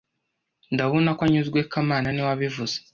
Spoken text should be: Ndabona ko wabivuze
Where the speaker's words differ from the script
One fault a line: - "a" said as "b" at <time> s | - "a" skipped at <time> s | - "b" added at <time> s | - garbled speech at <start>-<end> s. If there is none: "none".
- "anyuzwe kamana niwe" added at 1.3 s